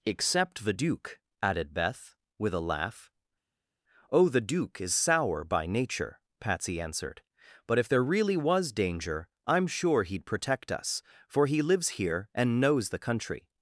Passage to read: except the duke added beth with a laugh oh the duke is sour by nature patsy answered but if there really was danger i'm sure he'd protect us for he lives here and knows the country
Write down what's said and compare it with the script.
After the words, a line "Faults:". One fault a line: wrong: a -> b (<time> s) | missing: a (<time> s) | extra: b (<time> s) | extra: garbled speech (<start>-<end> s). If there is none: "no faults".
except the duke added beth with a laugh oh the duke is sour by nature patsy answered but if there really was danger i'm sure he'd protect us for he lives here and knows the country
Faults:
no faults